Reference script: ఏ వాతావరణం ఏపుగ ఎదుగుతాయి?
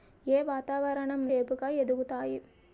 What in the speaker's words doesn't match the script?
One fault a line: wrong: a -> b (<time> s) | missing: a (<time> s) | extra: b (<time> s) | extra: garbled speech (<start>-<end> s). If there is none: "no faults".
no faults